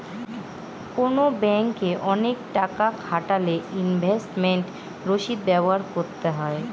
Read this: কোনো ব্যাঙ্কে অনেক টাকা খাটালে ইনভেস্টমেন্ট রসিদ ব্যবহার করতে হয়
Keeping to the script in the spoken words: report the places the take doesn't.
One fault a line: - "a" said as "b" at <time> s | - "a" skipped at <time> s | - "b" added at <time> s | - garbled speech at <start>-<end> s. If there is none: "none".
none